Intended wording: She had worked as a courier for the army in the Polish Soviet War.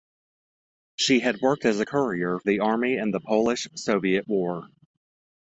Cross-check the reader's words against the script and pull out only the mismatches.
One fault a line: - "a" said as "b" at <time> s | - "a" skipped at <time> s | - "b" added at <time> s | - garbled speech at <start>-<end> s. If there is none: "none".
- "for" skipped at 2.4 s